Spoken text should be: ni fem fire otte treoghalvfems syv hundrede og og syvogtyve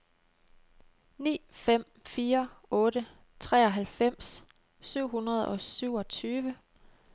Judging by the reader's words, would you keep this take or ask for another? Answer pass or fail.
fail